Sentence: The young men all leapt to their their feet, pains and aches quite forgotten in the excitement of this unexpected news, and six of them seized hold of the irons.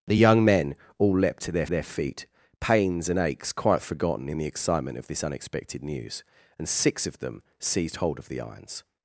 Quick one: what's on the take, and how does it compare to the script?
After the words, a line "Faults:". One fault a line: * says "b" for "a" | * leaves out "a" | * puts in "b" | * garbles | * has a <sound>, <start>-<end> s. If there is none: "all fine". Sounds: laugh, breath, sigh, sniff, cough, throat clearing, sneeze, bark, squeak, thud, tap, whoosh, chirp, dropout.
The young men all leapt to their their feet, pains and aches quite forgotten in the excitement of this unexpected news, and six of them seized hold of the irons.
Faults:
all fine